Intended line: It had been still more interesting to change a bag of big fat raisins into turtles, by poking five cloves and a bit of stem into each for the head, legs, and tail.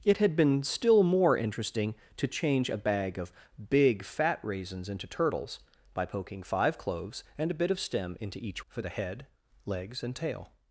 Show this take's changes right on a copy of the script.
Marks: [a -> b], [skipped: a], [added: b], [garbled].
It had been still more interesting to change a bag of big fat raisins into turtles, by poking five cloves and a bit of stem into each for the head, legs, and tail.